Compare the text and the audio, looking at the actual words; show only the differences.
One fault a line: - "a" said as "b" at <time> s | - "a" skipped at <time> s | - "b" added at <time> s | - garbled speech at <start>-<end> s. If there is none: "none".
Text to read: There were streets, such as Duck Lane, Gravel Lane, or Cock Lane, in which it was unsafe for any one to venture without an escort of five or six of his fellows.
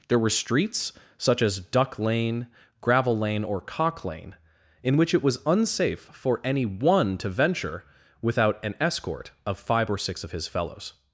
none